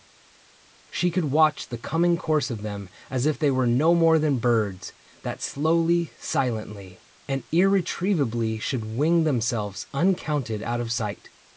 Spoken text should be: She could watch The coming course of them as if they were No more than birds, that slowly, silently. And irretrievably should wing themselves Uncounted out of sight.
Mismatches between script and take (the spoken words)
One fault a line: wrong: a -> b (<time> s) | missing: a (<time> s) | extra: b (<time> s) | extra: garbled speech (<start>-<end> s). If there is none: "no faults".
no faults